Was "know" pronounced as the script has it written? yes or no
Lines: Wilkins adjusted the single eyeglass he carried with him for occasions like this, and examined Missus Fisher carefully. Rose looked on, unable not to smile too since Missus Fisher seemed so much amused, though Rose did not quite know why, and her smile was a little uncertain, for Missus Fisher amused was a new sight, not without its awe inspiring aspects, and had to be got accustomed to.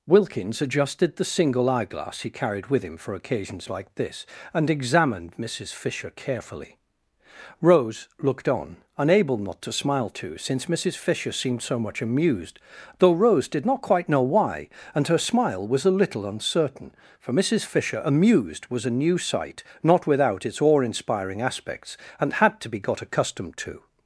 yes